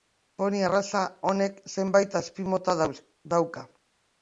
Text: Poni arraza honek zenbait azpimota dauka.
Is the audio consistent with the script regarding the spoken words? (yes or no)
yes